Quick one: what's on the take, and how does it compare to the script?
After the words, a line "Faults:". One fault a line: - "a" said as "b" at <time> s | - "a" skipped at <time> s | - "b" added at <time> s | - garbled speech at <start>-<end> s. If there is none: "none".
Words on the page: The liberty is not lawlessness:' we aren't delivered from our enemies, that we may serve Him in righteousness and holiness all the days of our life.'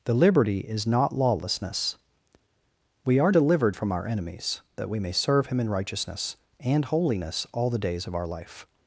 The liberty is not lawlessness:' we are delivered from our enemies, that we may serve Him in righteousness and holiness all the days of our life.'
Faults:
- "aren't" said as "are" at 3.2 s